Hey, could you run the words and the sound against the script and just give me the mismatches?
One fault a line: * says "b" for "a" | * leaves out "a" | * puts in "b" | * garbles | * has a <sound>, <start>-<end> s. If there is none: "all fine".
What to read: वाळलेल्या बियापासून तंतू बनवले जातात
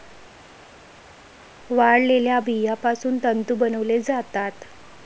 all fine